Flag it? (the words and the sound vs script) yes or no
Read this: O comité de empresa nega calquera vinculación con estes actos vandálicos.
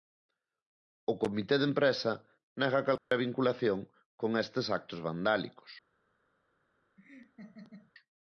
yes